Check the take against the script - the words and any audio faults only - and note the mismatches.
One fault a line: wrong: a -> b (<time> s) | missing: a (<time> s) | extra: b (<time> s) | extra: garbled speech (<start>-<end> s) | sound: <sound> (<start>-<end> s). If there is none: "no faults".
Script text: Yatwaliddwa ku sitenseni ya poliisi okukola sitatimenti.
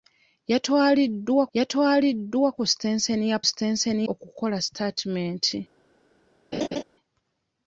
extra: yatwaliddwa (1.6 s)
wrong: poliisi -> sitenseni (3.5 s)
sound: laugh (6.5-6.8 s)